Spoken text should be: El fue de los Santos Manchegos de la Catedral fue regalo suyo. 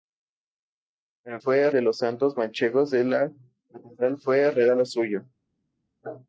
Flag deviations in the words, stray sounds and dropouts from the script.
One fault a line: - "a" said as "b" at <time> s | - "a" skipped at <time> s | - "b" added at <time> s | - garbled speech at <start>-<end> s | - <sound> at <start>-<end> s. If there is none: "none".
none